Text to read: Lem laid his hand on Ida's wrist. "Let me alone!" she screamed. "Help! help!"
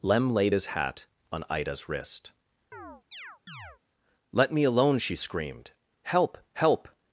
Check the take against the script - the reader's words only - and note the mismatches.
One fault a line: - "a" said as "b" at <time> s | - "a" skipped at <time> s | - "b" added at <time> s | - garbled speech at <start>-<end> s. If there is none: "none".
- "hand" said as "hat" at 0.7 s